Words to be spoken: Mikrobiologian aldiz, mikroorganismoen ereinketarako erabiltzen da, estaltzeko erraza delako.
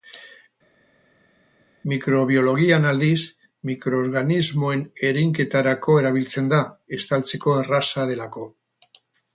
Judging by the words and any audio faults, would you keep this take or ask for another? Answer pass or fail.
pass